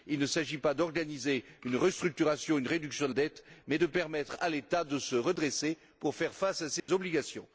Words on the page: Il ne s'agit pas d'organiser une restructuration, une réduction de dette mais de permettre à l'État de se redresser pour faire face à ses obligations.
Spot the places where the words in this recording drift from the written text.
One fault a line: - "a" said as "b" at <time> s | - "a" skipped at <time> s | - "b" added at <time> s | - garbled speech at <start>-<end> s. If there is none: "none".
none